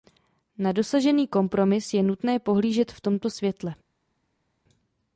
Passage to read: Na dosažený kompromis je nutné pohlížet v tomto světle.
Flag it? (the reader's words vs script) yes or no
no